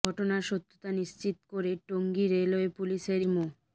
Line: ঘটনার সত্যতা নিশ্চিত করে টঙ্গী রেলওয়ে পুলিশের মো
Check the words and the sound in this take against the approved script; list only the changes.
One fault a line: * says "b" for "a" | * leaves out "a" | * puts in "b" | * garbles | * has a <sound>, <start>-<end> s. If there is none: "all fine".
all fine